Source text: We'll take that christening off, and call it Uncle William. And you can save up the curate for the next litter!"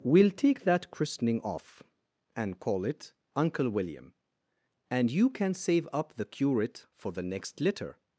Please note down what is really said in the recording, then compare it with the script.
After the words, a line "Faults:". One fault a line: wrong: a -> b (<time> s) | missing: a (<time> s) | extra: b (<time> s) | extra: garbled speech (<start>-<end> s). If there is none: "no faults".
We'll take that christening off, and call it Uncle William. And you can save up the curate for the next litter!"
Faults:
no faults